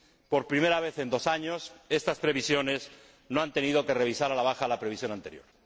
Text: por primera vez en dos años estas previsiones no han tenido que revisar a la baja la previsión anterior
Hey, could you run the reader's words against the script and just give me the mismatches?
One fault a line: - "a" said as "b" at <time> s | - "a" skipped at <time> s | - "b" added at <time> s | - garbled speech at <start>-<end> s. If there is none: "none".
none